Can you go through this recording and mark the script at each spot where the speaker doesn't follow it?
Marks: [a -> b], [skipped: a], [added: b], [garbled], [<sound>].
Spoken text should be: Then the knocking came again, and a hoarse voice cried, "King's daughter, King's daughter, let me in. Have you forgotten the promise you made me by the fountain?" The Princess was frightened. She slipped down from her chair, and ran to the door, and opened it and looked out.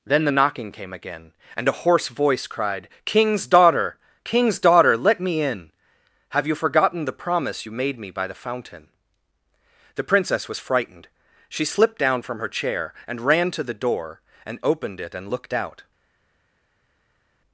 Then the knocking came again, and a hoarse voice cried, "King's daughter, King's daughter, let me in. Have you forgotten the promise you made me by the fountain?" The Princess was frightened. She slipped down from her chair, and ran to the door, and opened it and looked out.